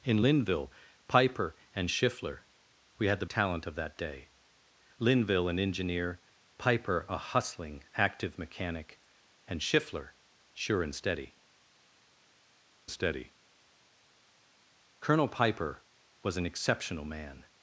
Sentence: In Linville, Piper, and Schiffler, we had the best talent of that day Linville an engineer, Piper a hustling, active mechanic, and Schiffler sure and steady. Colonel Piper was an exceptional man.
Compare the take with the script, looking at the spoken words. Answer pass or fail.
fail